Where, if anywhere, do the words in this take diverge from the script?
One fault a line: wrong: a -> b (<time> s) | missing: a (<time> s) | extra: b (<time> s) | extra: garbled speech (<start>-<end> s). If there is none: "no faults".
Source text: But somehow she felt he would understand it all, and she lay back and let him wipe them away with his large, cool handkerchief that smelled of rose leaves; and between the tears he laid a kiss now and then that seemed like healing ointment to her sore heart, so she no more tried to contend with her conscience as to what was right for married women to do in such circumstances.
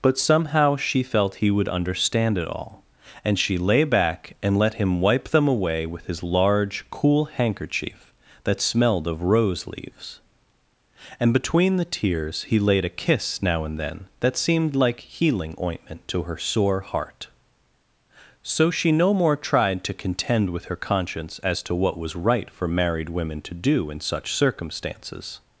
no faults